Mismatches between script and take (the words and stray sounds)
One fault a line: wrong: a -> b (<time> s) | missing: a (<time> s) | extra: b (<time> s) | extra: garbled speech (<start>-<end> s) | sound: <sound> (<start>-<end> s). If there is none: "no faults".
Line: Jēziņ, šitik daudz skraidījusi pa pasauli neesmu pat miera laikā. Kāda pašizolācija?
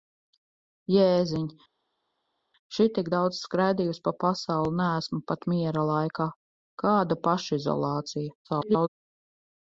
extra: garbled speech (8.4-8.9 s)